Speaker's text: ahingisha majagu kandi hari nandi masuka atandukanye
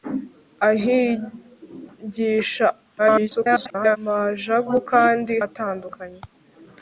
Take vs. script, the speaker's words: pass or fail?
fail